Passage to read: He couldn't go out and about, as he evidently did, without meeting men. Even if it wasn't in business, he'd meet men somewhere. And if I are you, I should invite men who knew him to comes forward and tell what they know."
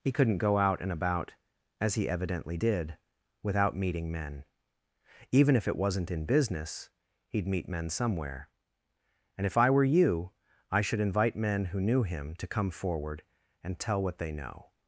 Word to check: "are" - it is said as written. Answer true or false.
false